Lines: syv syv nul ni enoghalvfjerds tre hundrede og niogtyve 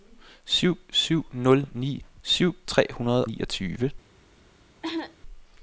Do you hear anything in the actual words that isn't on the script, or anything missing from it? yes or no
yes